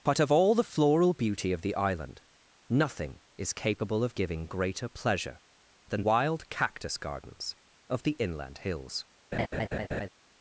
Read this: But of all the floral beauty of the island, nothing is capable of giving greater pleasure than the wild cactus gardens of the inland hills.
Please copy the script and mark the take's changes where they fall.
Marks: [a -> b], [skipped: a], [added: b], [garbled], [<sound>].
But of all the floral beauty of the island, nothing is capable of giving greater pleasure than [skipped: the] wild cactus gardens of the inland hills. [laugh]